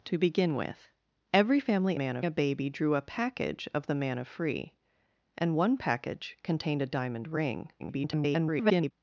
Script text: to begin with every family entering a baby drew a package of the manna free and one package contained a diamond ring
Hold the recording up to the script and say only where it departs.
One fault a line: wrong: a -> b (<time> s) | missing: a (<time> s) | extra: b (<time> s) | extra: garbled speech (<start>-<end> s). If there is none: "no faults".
wrong: entering -> manna (1.9 s)
extra: garbled speech (7.8-8.9 s)